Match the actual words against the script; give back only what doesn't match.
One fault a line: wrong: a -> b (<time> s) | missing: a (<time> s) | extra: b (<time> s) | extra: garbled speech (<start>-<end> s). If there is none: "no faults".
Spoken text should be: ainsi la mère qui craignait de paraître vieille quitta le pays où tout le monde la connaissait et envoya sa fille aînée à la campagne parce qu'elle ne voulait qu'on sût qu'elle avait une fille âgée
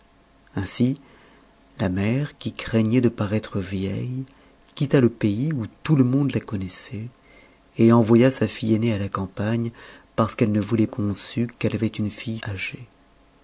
no faults